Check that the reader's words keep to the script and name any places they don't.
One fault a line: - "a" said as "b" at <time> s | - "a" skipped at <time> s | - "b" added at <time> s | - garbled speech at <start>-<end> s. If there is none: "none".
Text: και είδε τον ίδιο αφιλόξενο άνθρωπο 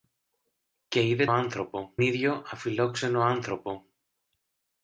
- "τον" said as "άνθρωπο" at 1.3 s